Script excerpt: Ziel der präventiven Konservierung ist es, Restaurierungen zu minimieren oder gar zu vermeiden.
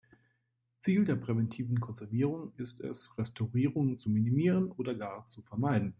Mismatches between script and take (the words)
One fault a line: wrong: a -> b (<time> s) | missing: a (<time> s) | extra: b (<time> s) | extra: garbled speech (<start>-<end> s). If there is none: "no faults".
no faults